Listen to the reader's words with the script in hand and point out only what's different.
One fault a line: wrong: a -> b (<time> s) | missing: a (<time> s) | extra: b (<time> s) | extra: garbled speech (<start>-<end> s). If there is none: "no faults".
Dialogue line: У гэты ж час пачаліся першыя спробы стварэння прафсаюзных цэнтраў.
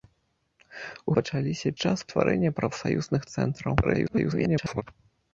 wrong: гэты -> пачаліся (1.2 s)
missing: пачаліся першыя спробы (2.0 s)
extra: garbled speech (3.8-4.8 s)